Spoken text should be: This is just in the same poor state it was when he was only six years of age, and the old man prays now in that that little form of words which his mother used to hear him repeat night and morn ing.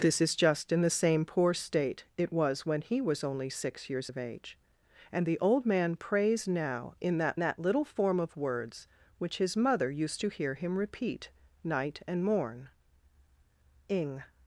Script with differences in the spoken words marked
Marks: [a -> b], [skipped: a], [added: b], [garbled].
This is just in the same poor state it was when he was only six years of age, and the old man prays now in that that little form of words which his mother used to hear him repeat night and morn ing.